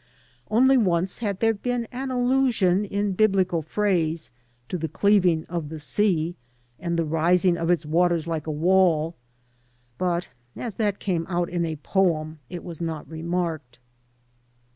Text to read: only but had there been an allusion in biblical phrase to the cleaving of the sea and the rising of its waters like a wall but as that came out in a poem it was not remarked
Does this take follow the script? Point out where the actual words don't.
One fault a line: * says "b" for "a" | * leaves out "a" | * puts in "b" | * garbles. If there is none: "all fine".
* says "once" for "but"